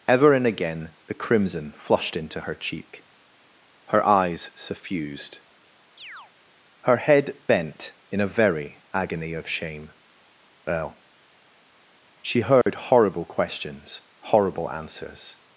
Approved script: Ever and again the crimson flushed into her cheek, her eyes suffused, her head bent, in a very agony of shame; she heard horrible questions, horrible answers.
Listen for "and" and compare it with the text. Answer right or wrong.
right